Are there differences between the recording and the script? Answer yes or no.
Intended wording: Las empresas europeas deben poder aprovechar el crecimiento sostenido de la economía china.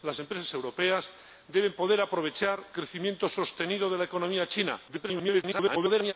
yes